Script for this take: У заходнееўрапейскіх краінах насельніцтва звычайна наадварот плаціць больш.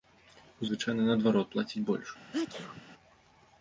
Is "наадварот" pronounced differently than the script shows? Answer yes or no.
no